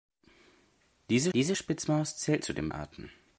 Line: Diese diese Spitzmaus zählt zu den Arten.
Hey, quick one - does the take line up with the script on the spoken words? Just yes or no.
yes